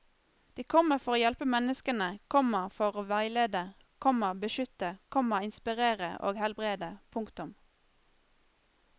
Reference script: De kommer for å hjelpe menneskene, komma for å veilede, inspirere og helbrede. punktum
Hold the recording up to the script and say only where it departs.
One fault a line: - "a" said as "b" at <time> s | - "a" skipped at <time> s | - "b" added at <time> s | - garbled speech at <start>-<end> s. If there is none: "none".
- "komma beskytte komma" added at 4.0 s